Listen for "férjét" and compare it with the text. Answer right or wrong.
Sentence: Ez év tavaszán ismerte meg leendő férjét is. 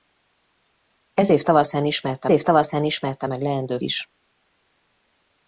wrong